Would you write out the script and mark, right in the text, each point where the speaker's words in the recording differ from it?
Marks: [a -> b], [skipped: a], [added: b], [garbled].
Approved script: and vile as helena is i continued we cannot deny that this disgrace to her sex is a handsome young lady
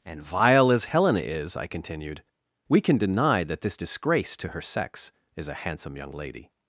and vile as helena is i continued we [cannot -> can] deny that this disgrace to her sex is a handsome young lady